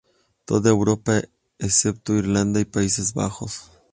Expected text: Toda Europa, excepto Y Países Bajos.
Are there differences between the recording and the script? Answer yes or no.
yes